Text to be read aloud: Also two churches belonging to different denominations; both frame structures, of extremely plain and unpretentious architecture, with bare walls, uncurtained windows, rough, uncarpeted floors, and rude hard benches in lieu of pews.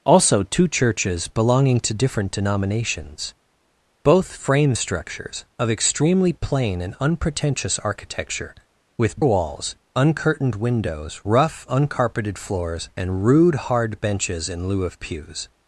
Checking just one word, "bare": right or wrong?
wrong